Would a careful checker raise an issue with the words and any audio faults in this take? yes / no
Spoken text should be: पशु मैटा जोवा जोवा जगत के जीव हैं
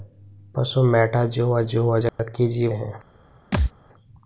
yes